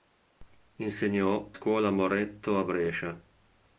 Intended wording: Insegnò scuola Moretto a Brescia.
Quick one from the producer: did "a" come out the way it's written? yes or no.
yes